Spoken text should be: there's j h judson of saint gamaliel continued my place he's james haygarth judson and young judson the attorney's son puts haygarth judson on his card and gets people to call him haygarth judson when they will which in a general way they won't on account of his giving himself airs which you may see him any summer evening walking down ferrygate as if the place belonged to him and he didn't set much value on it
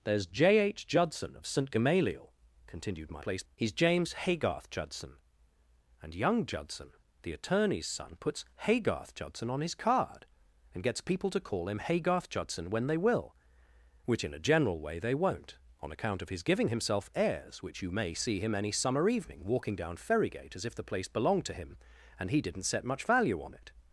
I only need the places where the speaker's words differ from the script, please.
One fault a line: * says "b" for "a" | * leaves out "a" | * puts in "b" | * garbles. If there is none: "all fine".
all fine